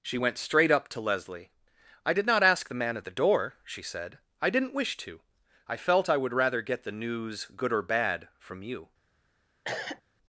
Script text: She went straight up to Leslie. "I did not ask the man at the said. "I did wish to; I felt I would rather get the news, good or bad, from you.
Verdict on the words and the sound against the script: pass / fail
fail